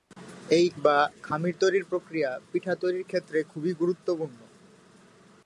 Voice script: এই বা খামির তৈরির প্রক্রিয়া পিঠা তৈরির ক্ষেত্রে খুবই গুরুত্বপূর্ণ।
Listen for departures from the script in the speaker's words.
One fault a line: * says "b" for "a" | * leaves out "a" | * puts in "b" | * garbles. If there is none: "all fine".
all fine